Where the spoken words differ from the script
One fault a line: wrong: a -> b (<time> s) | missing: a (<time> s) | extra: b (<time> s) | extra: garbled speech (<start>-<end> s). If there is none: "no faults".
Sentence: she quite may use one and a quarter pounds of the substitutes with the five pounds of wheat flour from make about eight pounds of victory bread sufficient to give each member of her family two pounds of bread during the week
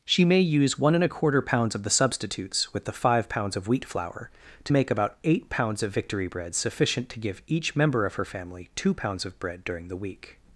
missing: quite (0.3 s)
wrong: from -> to (4.6 s)